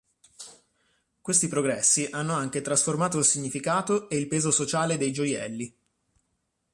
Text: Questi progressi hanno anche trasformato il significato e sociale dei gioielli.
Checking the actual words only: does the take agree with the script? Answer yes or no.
no